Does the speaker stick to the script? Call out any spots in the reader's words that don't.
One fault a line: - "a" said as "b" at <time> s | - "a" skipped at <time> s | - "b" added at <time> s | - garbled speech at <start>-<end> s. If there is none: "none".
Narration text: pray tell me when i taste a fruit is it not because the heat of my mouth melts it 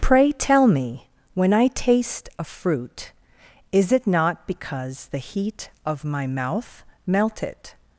- "melts" said as "melt" at 7.1 s